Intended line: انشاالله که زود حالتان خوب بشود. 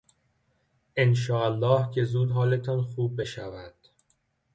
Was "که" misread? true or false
false